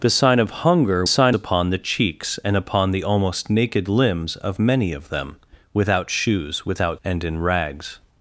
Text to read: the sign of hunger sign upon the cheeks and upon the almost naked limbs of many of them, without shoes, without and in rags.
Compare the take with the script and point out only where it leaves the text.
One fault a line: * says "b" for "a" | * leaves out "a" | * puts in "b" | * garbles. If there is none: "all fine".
all fine